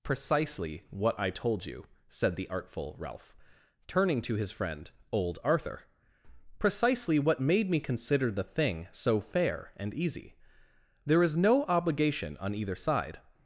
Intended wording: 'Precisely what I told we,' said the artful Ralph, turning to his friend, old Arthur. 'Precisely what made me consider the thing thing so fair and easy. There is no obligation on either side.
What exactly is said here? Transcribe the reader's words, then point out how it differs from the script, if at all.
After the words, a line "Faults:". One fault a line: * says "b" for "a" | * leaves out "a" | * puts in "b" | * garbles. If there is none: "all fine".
'Precisely what I told you,' said the artful Ralph, turning to his friend, old Arthur. 'Precisely what made me consider the thing so fair and easy. There is no obligation on either side.
Faults:
* says "you" for "we"
* leaves out "thing"